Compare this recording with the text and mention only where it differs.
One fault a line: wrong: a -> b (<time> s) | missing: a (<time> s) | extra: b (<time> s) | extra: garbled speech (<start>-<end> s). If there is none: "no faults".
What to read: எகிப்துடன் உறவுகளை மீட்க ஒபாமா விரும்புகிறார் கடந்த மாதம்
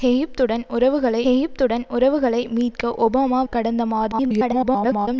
extra: எகிப்துடன் உறவுகளை (1.2 s)
missing: விரும்புகிறார் (3.4 s)
extra: garbled speech (4.1-5.1 s)